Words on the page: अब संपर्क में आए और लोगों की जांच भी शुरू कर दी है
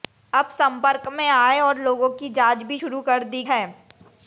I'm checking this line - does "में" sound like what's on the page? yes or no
yes